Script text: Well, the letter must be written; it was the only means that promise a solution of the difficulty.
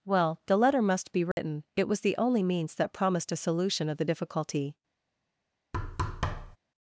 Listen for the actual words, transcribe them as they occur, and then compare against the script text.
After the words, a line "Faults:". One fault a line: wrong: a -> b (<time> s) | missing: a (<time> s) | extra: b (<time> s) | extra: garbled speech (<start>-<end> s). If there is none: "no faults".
Well, the letter must be written; it was the only means that promised a solution of the difficulty.
Faults:
wrong: promise -> promised (2.9 s)